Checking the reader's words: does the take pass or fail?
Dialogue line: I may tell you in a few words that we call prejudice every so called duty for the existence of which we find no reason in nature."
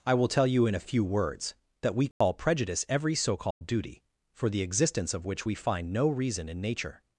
fail